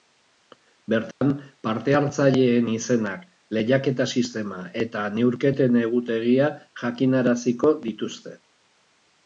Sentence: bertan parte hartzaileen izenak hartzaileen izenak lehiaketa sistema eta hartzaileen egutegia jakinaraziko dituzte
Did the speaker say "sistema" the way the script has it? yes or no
yes